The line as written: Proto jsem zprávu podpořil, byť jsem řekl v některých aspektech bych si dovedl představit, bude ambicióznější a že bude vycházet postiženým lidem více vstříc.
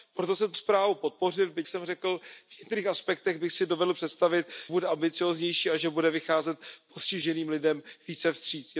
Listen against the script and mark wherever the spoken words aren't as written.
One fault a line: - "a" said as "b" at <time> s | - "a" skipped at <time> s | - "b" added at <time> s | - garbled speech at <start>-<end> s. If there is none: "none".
none